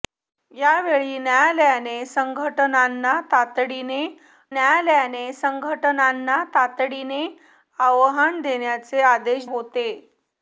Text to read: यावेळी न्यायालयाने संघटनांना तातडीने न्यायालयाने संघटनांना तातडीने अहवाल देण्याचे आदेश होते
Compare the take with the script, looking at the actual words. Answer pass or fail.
pass